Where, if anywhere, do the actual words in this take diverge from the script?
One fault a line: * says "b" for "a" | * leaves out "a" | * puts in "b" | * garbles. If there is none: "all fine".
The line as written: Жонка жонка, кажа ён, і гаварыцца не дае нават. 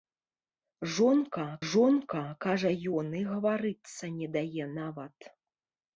all fine